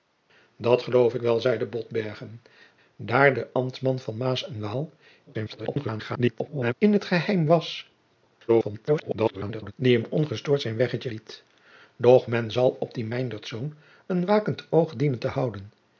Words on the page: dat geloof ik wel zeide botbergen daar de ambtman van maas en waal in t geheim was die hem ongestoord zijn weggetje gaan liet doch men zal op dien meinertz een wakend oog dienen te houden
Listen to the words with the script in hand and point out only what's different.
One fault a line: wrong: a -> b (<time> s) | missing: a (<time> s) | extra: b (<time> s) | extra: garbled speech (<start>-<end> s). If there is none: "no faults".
extra: garbled speech (5.3-6.7 s)
extra: garbled speech (8.5-9.7 s)
missing: gaan (11.1 s)